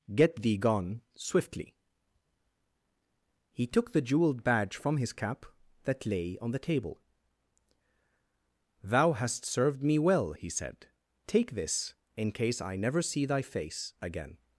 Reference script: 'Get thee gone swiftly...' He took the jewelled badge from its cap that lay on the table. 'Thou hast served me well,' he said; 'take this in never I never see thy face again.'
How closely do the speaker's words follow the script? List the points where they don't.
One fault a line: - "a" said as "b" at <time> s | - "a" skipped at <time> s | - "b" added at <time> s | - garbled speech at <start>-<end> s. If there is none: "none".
- "its" said as "his" at 5.0 s
- "never" said as "case" at 12.3 s